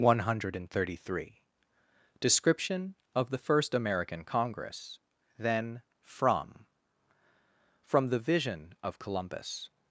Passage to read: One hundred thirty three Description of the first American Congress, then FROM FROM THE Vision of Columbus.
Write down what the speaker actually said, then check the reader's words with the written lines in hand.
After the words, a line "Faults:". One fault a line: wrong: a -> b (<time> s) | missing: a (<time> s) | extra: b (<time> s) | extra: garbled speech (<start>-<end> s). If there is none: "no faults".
One hundred thirty three Description of the first American Congress, then FROM FROM THE Vision of Columbus.
Faults:
no faults